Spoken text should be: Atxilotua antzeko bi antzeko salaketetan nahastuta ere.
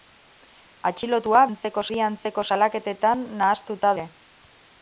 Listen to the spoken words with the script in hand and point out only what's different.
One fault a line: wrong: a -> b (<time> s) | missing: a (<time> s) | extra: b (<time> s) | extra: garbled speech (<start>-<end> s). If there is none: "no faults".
no faults